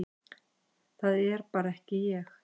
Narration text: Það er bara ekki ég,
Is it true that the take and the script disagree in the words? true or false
false